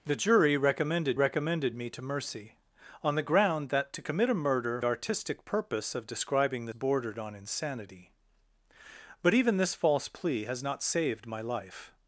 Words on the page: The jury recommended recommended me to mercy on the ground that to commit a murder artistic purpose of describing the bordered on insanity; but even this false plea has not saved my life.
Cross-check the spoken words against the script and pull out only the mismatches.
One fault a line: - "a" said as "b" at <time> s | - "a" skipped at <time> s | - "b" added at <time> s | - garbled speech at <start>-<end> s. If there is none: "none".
none